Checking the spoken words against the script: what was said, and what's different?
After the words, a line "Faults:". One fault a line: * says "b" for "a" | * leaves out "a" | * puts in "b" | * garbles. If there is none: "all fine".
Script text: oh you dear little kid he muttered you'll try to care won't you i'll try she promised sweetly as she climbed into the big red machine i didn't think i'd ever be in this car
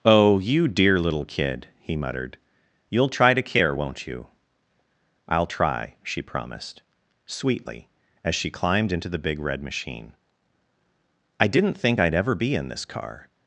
oh you dear little kid he muttered you'll try to care won't you i'll try she promised sweetly as she climbed into the big red machine i didn't think i'd ever be in this car
Faults:
all fine